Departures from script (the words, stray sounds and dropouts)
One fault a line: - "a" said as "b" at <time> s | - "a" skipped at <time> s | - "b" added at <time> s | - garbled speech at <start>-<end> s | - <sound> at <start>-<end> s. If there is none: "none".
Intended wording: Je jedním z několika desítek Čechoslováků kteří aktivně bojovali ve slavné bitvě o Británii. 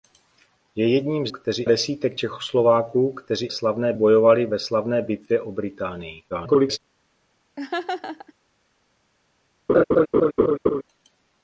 - "několika" said as "kteří" at 1.3 s
- "aktivně" said as "slavné" at 3.5 s
- garbled speech at 6.3-6.8 s
- laugh at 7.6-8.3 s
- laugh at 9.7-10.8 s